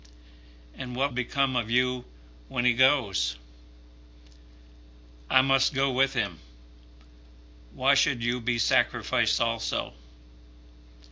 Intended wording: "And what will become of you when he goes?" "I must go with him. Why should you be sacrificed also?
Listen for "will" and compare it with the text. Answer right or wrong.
wrong